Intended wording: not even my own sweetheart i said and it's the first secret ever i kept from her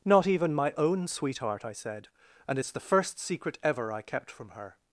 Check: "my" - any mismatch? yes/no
no